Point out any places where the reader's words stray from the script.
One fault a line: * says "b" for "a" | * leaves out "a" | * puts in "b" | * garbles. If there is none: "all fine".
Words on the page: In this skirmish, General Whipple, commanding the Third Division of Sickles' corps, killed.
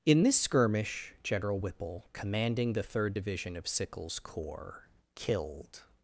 all fine